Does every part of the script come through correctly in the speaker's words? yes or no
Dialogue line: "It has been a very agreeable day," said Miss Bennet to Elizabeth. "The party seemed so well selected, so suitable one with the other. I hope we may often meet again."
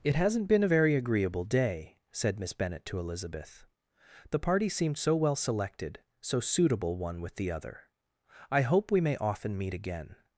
no